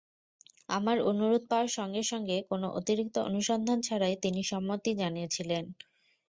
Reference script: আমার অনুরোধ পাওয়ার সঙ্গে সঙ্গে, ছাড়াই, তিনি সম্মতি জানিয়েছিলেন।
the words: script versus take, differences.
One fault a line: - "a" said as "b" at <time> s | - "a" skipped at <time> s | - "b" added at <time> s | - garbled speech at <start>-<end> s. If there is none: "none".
- "কোনো অতিরিক্ত অনুসন্ধান" added at 2.5 s